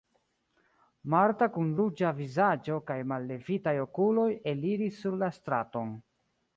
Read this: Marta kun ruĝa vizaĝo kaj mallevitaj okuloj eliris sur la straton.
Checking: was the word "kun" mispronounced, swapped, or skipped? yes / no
no